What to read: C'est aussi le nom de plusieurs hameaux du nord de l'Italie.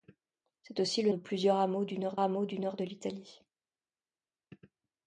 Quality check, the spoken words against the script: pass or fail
fail